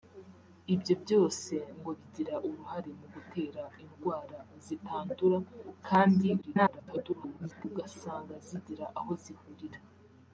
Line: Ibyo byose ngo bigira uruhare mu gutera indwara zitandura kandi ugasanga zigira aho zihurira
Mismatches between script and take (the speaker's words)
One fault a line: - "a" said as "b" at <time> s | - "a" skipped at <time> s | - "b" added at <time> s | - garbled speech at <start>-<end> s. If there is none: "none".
- garbled speech at 6.4-7.7 s